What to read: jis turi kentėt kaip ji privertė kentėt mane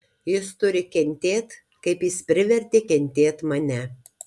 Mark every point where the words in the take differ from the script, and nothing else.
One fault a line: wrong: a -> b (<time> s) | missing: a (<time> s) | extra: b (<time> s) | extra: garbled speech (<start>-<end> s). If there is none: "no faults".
wrong: ji -> jis (2.1 s)